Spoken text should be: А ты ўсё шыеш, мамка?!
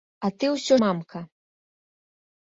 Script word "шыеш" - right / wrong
wrong